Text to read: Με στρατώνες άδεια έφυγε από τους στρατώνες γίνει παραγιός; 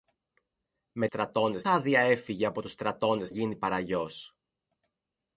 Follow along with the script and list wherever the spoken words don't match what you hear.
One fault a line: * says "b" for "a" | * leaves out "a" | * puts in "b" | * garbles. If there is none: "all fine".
all fine